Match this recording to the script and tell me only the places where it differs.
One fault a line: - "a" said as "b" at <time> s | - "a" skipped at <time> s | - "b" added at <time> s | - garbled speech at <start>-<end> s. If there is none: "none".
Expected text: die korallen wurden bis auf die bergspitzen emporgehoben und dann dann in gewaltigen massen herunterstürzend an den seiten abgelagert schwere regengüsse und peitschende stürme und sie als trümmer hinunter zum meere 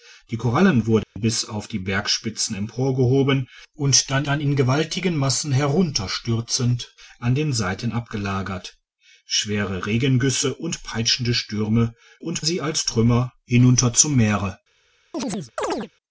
none